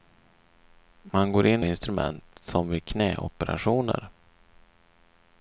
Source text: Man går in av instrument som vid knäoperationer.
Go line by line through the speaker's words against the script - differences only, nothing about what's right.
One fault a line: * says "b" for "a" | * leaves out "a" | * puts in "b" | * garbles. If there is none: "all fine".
all fine